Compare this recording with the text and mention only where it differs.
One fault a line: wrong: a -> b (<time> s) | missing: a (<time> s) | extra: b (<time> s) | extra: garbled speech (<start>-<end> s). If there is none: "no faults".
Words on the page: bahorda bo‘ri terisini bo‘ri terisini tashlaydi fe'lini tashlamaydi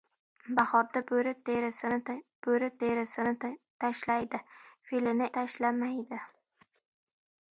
no faults